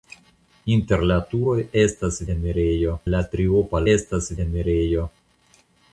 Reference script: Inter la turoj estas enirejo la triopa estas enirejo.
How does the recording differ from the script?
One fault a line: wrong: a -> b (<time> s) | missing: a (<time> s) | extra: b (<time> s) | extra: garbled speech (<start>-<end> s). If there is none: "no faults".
no faults